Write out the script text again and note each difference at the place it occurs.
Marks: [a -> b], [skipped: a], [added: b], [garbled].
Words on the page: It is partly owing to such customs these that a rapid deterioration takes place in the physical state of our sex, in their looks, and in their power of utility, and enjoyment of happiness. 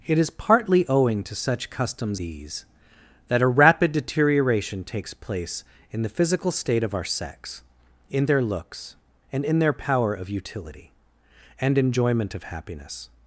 It is partly owing to such customs these that a rapid deterioration takes place in the physical state of our sex, in their looks, and in their power of utility, and enjoyment of happiness.